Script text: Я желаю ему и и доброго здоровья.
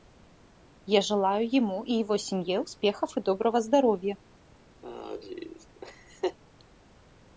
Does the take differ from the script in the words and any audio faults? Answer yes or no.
yes